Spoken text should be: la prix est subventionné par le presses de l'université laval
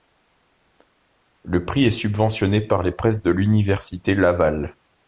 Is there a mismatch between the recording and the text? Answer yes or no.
yes